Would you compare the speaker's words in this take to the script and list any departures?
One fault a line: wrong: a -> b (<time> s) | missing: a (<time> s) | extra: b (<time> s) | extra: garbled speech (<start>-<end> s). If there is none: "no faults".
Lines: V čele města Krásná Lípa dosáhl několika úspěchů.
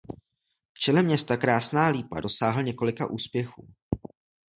no faults